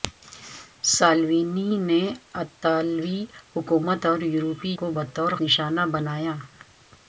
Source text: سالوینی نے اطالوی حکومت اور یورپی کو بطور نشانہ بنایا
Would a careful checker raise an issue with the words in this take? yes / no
no